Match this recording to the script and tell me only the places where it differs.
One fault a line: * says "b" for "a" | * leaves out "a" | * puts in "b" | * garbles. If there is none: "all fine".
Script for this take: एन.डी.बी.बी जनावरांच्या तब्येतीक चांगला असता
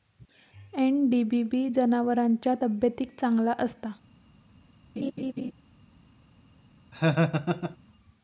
all fine